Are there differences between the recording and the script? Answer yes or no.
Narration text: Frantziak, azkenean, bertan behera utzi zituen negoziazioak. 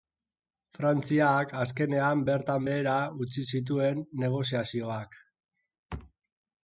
no